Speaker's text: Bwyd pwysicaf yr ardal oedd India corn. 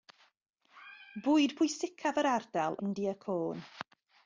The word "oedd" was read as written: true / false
false